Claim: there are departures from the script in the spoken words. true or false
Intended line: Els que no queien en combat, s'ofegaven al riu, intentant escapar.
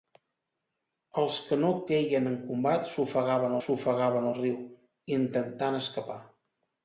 true